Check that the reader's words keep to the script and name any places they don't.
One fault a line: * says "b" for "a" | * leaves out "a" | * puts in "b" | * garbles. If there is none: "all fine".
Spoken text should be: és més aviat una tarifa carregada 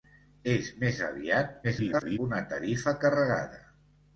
* garbles